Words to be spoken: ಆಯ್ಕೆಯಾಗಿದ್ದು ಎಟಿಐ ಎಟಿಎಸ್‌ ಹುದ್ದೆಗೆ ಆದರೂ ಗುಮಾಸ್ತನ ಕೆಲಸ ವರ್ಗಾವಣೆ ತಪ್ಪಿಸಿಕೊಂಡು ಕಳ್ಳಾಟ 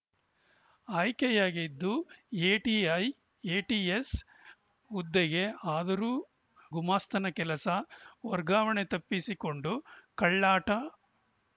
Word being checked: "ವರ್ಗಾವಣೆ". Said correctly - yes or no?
yes